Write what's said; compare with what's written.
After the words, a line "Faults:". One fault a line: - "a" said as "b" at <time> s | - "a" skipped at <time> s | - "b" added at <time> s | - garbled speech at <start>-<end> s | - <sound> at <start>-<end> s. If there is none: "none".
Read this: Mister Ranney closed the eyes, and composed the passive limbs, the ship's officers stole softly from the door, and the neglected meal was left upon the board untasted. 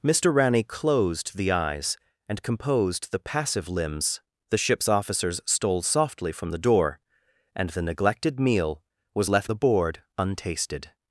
Mister Ranney closed the eyes, and composed the passive limbs, the ship's officers stole softly from the door, and the neglected meal was left the board untasted.
Faults:
- "upon" skipped at 9.5 s